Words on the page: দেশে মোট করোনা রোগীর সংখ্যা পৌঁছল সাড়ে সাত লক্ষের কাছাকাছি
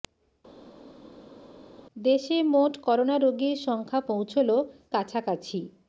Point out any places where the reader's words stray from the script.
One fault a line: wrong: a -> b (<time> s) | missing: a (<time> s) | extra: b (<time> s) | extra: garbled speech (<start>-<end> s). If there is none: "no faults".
missing: সাড়ে সাত লক্ষের (4.5 s)